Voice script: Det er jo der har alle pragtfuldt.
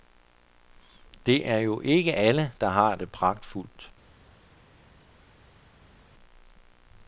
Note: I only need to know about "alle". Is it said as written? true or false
false